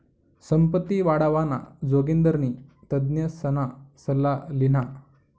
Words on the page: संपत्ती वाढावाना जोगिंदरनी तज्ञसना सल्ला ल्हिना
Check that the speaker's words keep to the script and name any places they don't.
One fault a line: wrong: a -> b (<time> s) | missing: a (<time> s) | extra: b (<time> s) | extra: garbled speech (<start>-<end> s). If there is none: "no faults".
no faults